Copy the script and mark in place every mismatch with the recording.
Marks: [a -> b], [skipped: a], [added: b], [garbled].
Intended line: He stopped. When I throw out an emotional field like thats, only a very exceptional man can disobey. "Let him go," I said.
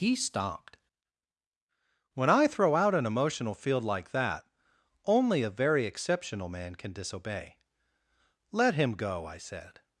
He stopped. When I throw out an emotional field like [thats, -> that] only a very exceptional man can disobey. "Let him go," I said.